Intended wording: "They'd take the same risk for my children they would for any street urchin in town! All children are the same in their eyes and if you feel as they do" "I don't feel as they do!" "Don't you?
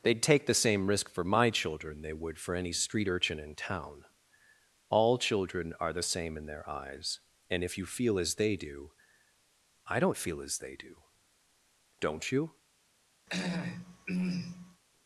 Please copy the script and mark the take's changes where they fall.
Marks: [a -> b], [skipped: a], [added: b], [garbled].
"They'd take the same risk for my children they would for any street urchin in town! All children are the same in their eyes and if you feel as they do" "I don't feel as they do!" "Don't you?